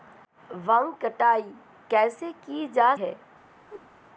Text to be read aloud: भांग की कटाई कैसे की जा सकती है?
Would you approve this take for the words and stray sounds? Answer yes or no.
no